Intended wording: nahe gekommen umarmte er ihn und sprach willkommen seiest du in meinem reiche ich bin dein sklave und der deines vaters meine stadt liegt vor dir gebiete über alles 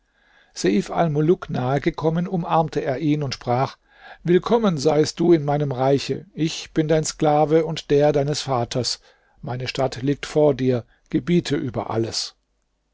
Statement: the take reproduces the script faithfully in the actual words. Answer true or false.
true